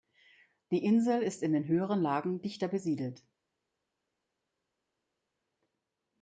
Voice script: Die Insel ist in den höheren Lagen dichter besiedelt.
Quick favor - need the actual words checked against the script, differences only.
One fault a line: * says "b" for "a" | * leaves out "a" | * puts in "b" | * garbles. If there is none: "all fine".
all fine